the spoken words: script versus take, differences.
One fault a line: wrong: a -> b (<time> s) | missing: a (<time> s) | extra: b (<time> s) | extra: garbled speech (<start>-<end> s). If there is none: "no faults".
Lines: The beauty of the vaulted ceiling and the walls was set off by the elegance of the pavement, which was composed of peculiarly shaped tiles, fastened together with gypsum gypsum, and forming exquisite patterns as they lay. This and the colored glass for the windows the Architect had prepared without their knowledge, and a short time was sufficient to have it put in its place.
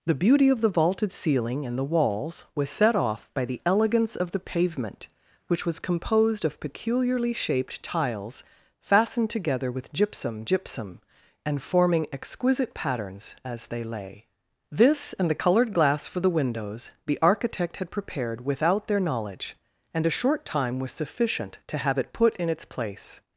no faults